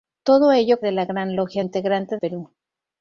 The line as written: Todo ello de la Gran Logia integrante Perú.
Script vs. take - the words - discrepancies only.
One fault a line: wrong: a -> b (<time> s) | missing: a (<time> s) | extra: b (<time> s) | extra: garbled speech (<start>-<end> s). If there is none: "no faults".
no faults